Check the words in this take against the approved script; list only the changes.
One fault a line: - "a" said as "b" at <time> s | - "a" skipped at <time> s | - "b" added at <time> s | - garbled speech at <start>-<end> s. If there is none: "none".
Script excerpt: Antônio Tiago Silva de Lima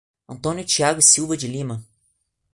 none